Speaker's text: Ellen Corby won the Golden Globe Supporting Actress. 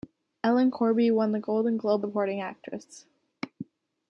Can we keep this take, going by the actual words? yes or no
yes